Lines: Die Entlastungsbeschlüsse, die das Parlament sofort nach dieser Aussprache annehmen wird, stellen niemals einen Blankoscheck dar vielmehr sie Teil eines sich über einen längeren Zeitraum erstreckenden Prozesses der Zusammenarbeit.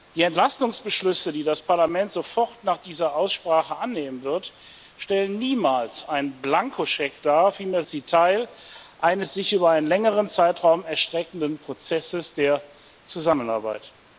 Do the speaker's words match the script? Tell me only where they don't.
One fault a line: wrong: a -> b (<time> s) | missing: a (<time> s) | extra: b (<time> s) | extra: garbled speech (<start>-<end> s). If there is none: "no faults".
no faults